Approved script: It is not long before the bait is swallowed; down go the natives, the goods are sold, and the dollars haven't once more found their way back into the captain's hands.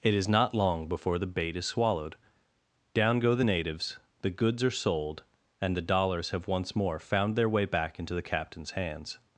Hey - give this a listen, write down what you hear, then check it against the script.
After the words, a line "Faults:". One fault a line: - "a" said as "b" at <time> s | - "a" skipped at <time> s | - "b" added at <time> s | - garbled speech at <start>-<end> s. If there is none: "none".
It is not long before the bait is swallowed; down go the natives, the goods are sold, and the dollars have once more found their way back into the captain's hands.
Faults:
- "haven't" said as "have" at 6.3 s